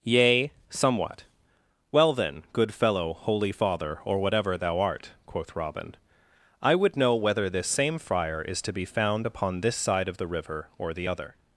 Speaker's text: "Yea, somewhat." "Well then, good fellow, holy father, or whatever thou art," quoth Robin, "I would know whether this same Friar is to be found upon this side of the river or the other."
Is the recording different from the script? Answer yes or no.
no